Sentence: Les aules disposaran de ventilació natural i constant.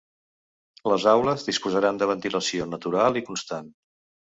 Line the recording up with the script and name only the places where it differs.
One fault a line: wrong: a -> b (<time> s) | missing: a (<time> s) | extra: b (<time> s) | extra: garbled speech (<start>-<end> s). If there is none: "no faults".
no faults